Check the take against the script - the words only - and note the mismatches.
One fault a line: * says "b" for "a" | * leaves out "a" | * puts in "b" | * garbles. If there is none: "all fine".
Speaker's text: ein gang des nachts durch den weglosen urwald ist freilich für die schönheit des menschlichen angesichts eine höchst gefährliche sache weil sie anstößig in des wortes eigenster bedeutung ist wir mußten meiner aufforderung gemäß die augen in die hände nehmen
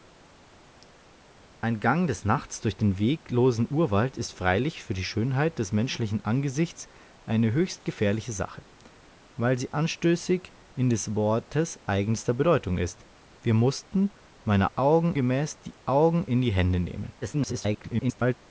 * says "augen" for "aufforderung"
* garbles